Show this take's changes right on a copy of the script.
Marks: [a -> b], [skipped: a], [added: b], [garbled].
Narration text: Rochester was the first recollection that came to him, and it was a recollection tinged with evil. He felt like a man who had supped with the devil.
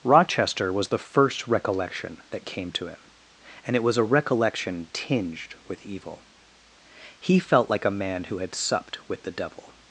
Rochester was the first recollection that came to him, and it was a recollection tinged with evil. He felt like a man who had supped with the devil.